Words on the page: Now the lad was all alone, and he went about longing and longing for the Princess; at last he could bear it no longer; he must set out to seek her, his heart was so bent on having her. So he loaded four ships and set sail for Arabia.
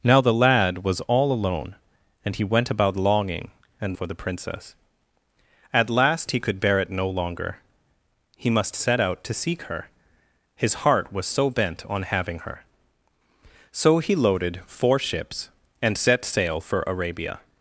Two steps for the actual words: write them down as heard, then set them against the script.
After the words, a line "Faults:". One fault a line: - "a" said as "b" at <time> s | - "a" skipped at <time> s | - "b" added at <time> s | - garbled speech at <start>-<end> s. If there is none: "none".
Now the lad was all alone, and he went about longing and for the Princess; at last he could bear it no longer; he must set out to seek her, his heart was so bent on having her. So he loaded four ships and set sail for Arabia.
Faults:
- "longing" skipped at 4.0 s